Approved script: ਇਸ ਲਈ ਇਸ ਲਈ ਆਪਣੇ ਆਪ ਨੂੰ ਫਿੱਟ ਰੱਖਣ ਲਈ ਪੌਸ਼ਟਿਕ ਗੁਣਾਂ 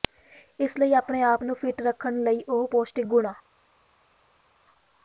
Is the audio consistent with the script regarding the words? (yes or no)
no